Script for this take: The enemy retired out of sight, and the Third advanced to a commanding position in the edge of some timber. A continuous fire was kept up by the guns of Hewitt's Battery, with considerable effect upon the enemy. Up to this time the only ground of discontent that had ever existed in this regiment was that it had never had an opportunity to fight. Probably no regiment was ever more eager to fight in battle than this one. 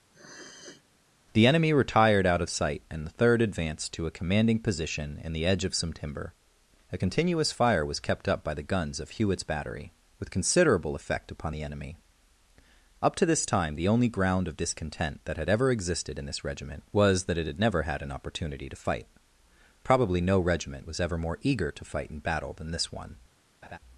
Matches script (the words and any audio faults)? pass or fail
fail